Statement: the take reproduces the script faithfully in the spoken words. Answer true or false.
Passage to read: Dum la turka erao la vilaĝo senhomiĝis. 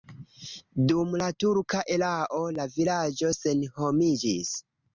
true